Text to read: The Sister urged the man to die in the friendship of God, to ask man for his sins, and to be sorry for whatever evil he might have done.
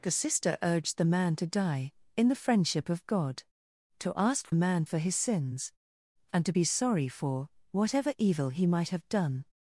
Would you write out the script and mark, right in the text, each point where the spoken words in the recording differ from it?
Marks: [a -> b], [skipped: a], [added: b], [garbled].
The Sister urged the man to die in the friendship of God, to ask man for his sins, and to be sorry for whatever evil he might have done.